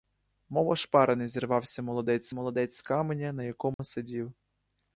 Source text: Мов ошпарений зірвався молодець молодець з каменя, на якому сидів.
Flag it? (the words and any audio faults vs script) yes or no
yes